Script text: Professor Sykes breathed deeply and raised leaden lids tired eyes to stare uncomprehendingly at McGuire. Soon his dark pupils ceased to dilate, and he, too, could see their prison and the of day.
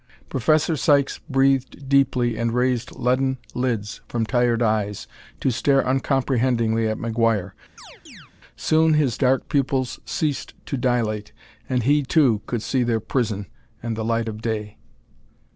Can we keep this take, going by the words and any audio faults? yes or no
no